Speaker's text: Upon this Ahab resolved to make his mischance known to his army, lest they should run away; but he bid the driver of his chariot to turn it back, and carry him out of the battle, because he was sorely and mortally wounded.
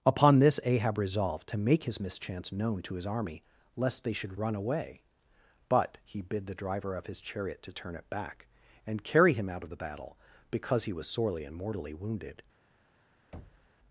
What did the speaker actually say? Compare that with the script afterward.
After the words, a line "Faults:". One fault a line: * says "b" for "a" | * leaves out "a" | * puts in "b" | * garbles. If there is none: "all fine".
Upon this Ahab resolved to make his mischance known to his army, lest they should run away; but he bid the driver of his chariot to turn it back, and carry him out of the battle, because he was sorely and mortally wounded.
Faults:
all fine